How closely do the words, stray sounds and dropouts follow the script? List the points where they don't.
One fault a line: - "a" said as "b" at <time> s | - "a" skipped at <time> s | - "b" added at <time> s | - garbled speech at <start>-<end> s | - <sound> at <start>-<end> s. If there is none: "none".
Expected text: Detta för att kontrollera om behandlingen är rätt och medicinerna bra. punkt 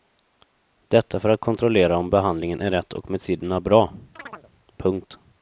- chirp at 4.2-4.5 s